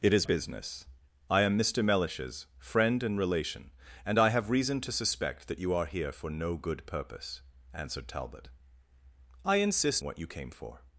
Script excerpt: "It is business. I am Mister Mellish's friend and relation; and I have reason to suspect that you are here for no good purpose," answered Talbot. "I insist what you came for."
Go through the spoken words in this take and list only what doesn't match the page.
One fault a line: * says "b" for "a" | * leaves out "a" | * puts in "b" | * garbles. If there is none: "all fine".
all fine